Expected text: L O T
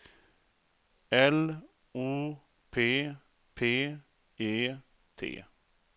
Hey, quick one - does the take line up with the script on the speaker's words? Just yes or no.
no